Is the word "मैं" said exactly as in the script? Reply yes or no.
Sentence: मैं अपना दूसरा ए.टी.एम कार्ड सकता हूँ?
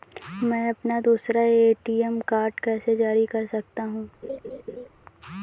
yes